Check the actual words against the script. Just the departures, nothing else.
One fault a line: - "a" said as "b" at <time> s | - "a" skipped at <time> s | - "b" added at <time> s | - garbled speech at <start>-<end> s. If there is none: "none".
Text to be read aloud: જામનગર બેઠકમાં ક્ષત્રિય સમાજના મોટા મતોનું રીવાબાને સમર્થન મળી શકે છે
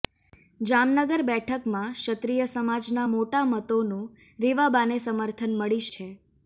- "શકે" skipped at 5.8 s